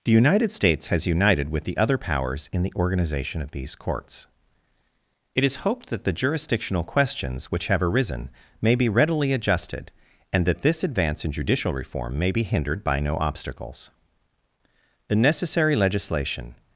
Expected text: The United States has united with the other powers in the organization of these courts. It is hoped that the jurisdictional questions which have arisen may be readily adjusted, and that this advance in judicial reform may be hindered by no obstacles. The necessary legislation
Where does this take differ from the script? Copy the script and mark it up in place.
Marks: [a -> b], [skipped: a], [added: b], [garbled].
The United States has united with the other powers in the organization of these courts. It is hoped that the jurisdictional questions which have arisen may be readily adjusted, and that this advance in judicial reform may be hindered by no obstacles. The necessary legislation